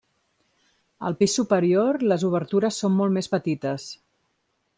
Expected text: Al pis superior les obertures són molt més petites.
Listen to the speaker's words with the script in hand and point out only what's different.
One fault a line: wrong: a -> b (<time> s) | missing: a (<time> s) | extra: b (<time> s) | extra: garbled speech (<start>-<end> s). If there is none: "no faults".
no faults